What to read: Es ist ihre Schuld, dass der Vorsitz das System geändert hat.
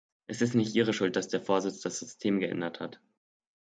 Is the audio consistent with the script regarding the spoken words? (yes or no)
no